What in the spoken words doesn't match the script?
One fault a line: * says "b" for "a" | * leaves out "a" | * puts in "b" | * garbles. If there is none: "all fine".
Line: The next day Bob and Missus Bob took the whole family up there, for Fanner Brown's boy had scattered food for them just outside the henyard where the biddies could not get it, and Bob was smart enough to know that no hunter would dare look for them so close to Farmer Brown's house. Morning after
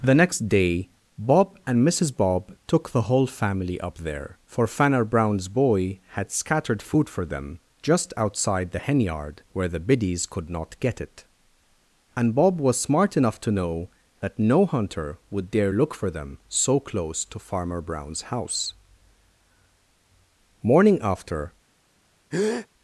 all fine